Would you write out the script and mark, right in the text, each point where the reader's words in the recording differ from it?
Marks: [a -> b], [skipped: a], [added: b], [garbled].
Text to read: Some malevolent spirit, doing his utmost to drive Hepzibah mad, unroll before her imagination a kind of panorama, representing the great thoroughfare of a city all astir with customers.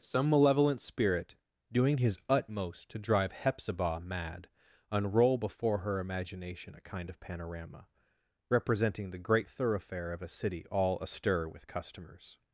Some malevolent spirit, doing his utmost to drive Hepzibah mad, unroll before her imagination a kind of panorama, representing the great thoroughfare of a city all astir with customers.